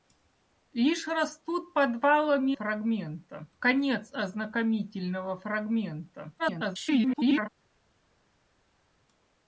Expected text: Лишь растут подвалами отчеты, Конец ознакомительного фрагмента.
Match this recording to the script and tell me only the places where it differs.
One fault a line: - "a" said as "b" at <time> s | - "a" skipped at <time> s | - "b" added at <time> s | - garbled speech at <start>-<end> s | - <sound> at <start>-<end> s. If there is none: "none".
- "отчеты" said as "фрагмента" at 2.5 s
- garbled speech at 6.4-7.5 s